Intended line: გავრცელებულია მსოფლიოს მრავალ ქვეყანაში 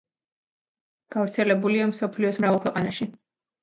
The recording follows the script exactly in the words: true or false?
true